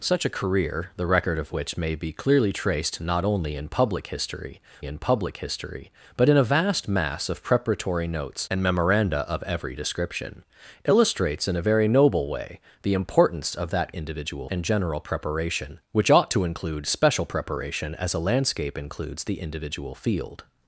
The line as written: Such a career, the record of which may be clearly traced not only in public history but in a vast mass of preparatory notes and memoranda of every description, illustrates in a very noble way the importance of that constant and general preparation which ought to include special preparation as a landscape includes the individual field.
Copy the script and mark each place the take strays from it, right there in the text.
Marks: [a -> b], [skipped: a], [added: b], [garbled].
Such a career, the record of which may be clearly traced not only in public history [added: in public history] but in a vast mass of preparatory notes and memoranda of every description, illustrates in a very noble way the importance of that [constant -> individual] and general preparation which ought to include special preparation as a landscape includes the individual field.